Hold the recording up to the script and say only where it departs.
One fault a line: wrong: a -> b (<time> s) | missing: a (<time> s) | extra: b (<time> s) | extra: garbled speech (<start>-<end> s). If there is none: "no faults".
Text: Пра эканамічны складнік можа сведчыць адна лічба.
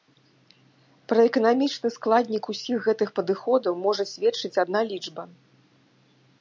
extra: усіх гэтых падыходаў (2.5 s)